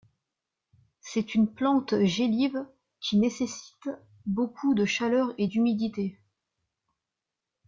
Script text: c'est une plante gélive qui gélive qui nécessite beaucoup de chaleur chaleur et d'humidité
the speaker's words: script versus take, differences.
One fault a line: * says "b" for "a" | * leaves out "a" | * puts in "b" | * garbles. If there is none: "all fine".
* leaves out "gélive qui"
* leaves out "chaleur"